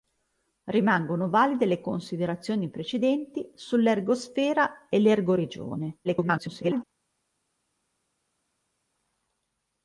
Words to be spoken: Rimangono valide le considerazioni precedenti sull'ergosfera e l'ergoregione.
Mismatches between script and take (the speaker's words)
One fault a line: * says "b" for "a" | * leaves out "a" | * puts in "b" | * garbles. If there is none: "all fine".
* garbles